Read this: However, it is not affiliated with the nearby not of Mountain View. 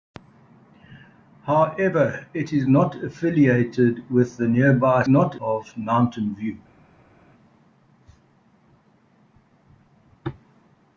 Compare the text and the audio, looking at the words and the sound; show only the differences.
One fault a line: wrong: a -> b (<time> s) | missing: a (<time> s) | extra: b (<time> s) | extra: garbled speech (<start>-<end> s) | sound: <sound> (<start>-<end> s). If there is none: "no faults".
no faults